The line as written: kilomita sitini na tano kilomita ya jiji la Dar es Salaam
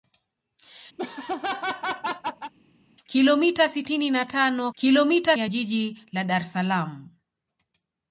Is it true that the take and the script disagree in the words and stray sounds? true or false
true